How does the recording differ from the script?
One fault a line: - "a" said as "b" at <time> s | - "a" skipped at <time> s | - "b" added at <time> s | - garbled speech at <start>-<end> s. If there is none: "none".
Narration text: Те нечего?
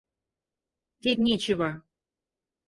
none